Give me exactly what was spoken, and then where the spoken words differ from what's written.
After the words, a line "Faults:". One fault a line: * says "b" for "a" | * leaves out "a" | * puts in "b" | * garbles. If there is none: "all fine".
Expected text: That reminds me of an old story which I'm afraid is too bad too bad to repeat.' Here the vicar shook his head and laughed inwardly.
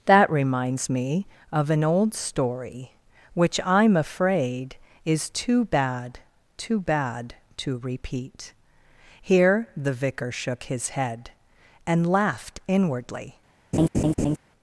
That reminds me of an old story which I'm afraid is too bad too bad to repeat.' Here the vicar shook his head and laughed inwardly.
Faults:
all fine